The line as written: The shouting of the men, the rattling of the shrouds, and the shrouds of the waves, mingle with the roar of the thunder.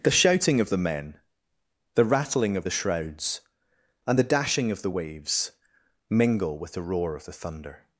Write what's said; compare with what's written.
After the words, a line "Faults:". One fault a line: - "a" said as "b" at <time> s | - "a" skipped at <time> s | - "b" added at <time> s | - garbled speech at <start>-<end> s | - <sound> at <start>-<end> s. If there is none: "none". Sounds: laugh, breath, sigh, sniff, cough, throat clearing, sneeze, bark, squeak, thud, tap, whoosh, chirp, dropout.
The shouting of the men, the rattling of the shrouds, and the dashing of the waves, mingle with the roar of the thunder.
Faults:
- "shrouds" said as "dashing" at 4.3 s